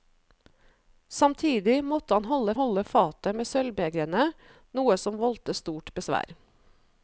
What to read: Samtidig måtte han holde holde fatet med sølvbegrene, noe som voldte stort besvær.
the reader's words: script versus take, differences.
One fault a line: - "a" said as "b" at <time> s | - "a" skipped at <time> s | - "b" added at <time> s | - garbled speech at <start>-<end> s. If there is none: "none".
none